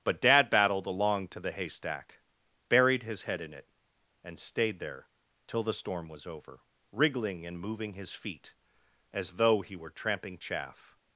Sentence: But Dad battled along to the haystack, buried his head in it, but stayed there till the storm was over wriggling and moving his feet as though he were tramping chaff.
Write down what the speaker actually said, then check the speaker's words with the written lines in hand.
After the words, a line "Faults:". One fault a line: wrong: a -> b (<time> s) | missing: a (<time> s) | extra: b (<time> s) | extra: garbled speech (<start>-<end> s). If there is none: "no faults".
But Dad battled along to the haystack, buried his head in it, and stayed there till the storm was over wriggling and moving his feet as though he were tramping chaff.
Faults:
wrong: but -> and (4.2 s)